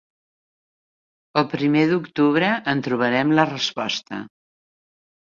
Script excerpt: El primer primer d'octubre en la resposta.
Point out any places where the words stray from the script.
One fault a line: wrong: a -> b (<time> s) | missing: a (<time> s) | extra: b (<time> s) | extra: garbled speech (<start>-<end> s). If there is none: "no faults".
missing: primer (1.8 s)
extra: trobarem (2.9 s)